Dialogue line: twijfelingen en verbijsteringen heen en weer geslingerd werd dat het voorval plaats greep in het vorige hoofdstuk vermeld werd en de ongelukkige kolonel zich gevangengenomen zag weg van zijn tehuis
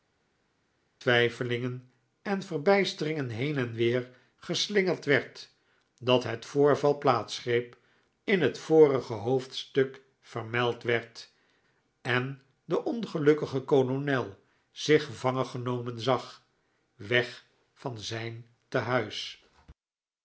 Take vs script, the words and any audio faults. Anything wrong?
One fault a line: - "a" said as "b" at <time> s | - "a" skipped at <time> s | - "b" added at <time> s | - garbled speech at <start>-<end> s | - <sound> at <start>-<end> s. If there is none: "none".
none